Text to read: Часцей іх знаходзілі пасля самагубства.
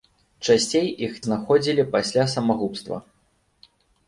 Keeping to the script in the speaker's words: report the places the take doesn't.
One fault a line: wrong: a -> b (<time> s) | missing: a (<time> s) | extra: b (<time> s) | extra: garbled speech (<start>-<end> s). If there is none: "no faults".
no faults